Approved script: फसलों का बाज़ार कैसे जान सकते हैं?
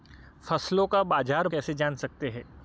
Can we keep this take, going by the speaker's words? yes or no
yes